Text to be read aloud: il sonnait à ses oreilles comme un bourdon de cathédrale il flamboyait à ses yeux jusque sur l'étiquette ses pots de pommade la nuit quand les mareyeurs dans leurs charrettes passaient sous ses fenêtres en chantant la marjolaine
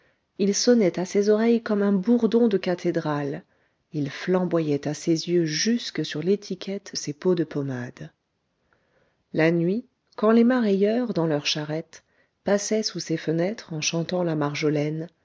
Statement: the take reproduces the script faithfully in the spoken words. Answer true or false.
true